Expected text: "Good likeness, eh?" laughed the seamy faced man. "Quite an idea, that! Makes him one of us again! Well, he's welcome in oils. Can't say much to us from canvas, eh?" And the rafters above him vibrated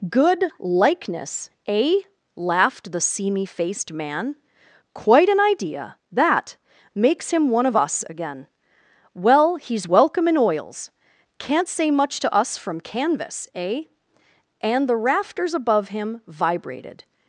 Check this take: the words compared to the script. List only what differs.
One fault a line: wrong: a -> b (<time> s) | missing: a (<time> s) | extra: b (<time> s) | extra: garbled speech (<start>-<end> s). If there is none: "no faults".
no faults